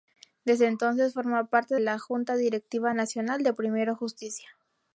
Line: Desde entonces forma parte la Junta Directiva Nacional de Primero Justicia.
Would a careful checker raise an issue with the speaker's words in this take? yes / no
no